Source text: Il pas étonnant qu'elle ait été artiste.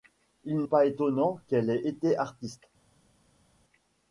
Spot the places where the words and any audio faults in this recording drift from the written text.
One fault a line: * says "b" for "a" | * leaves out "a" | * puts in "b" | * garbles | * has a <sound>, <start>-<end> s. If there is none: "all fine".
all fine